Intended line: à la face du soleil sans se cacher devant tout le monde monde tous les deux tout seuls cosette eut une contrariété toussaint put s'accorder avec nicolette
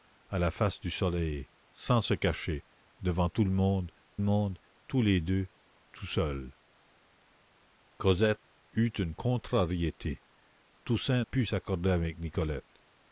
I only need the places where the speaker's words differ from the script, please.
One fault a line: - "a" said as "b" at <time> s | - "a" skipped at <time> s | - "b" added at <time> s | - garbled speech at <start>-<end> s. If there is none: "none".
none